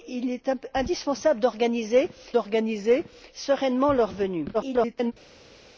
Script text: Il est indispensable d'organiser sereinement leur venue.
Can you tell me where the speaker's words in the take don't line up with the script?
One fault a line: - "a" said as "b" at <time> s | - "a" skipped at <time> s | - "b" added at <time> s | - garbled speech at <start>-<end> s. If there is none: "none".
- "d'organiser" added at 2.3 s
- garbled speech at 4.5-5.1 s